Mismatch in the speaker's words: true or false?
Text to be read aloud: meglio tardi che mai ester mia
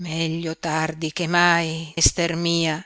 false